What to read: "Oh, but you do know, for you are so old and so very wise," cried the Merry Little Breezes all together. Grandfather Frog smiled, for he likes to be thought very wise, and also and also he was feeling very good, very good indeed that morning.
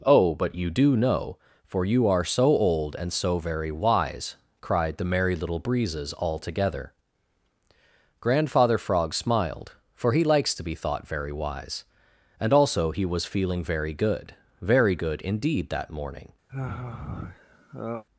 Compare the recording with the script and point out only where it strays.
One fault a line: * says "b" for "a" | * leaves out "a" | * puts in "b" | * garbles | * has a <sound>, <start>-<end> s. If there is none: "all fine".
* leaves out "and also"
* has a sigh, 16.5-18.0 s